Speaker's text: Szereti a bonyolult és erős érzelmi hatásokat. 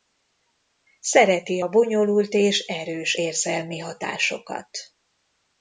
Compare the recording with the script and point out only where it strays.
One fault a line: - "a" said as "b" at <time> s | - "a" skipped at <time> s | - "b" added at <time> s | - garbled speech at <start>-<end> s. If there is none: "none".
none